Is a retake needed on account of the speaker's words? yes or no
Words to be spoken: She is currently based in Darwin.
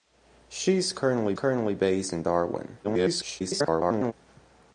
yes